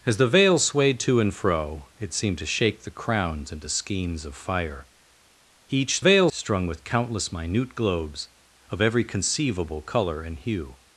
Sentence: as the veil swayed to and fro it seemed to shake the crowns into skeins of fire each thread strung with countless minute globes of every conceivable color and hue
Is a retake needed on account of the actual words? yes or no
yes